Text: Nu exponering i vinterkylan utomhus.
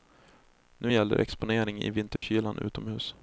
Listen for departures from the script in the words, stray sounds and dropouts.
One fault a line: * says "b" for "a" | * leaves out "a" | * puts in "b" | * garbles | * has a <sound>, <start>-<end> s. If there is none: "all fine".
* puts in "gäller"
* has a dropout, 2.2-2.2 s